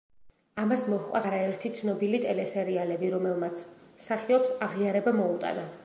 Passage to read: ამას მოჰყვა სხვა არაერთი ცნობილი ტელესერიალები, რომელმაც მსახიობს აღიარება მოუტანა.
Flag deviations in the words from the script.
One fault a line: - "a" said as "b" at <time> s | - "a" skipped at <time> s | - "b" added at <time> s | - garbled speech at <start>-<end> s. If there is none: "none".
- "სხვა" skipped at 1.2 s